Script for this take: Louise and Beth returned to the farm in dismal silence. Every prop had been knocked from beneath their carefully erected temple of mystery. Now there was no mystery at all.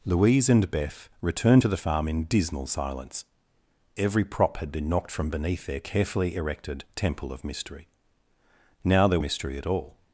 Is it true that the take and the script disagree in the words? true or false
true